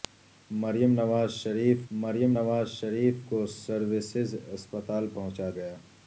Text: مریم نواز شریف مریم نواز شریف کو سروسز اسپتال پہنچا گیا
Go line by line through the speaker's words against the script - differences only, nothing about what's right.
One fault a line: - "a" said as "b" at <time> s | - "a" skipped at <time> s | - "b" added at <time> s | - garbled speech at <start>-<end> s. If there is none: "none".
none